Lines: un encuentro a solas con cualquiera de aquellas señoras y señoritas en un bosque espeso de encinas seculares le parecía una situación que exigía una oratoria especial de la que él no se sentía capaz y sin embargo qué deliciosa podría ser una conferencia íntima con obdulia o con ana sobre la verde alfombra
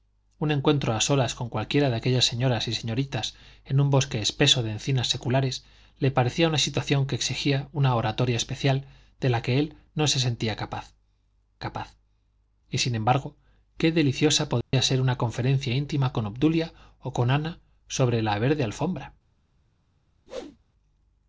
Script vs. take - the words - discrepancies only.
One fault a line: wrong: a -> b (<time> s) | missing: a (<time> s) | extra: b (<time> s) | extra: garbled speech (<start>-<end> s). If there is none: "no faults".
extra: capaz (11.6 s)